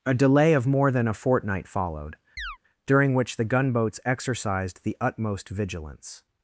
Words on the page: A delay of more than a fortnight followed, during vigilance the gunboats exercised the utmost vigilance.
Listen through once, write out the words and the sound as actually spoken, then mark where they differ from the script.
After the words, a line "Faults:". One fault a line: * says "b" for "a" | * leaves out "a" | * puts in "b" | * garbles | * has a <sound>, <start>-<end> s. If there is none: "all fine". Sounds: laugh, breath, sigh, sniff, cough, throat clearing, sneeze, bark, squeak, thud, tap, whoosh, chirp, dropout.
A delay of more than a fortnight followed, during which the gunboats exercised the utmost vigilance.
Faults:
* has a chirp, 2.4-2.6 s
* says "which" for "vigilance"